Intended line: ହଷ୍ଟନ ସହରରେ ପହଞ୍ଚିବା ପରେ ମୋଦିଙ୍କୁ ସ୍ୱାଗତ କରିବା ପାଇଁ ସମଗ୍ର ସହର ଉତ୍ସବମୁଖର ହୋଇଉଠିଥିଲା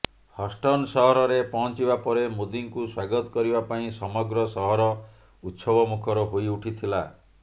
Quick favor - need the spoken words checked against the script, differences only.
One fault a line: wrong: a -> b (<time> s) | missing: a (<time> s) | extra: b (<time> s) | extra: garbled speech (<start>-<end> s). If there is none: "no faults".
no faults